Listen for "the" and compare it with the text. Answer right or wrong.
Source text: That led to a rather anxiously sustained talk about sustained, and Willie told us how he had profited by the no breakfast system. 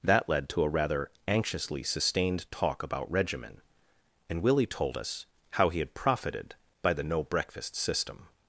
right